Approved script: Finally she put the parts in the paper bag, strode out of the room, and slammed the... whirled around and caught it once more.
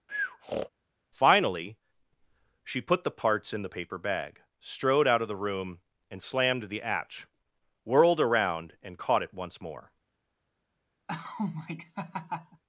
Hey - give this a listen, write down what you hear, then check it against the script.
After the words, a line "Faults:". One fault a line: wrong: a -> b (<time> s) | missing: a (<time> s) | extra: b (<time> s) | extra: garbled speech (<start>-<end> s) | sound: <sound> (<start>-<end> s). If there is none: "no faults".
Finally she put the parts in the paper bag, strode out of the room, and slammed the... hatch whirled around and caught it once more.
Faults:
sound: breath (0.1-0.7 s)
extra: hatch (6.8 s)
sound: laugh (11.1-12.6 s)